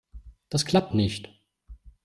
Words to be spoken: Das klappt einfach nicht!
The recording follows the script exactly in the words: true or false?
false